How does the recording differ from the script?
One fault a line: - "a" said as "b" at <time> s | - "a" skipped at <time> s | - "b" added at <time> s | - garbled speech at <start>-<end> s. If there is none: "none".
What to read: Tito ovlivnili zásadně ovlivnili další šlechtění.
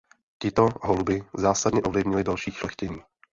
- "ovlivnili" said as "holubi" at 0.8 s